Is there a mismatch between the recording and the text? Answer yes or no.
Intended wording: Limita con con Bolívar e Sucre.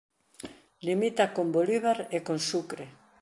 yes